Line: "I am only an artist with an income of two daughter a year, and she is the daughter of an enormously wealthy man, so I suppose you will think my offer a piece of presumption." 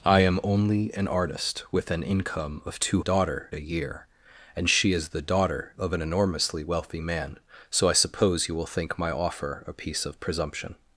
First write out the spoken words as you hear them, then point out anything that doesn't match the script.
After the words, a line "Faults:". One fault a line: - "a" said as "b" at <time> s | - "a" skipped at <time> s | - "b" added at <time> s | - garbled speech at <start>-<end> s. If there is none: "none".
"I am only an artist with an income of two daughter a year, and she is the daughter of an enormously wealthy man, so I suppose you will think my offer a piece of presumption."
Faults:
none